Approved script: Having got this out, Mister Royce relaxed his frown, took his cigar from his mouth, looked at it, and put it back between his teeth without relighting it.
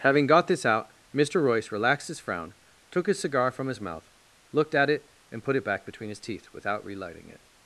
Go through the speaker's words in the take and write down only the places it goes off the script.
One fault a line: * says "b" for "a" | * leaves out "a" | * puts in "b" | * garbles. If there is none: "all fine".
all fine